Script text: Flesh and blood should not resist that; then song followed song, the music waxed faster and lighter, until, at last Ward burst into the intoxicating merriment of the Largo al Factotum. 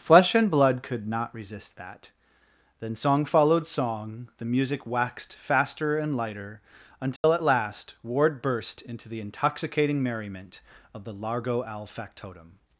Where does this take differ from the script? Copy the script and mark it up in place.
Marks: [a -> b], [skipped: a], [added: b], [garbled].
Flesh and blood [should -> could] not resist that; then song followed song, the music waxed faster and lighter, until, at last Ward burst into the intoxicating merriment of the Largo al Factotum.